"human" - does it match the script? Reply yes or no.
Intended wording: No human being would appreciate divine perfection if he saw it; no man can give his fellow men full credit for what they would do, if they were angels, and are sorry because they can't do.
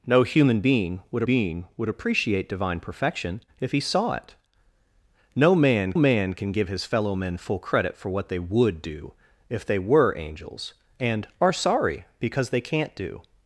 yes